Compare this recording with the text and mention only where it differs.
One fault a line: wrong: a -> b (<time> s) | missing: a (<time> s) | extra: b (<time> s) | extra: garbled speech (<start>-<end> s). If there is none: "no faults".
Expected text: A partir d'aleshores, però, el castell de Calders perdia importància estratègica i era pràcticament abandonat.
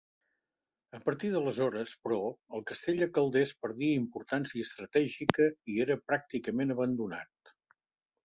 no faults